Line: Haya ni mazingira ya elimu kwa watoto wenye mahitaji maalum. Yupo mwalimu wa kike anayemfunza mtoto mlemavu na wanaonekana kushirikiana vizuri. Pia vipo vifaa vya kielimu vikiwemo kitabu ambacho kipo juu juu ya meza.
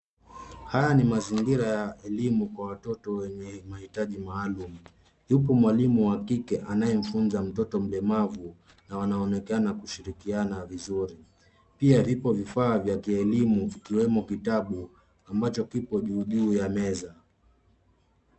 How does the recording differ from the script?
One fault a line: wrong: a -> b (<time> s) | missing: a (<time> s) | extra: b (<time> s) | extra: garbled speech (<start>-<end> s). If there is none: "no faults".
no faults